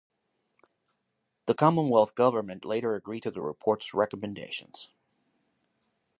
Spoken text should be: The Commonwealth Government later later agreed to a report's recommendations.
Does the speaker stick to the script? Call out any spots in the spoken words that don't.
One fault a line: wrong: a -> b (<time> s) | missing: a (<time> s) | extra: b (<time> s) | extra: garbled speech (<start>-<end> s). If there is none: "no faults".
missing: later (2.9 s)
wrong: a -> the (3.3 s)